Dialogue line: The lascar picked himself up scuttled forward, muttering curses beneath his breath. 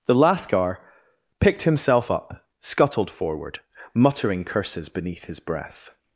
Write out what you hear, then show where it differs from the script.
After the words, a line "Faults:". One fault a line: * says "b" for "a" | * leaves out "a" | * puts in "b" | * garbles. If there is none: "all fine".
The lascar picked himself up scuttled forward, muttering curses beneath his breath.
Faults:
all fine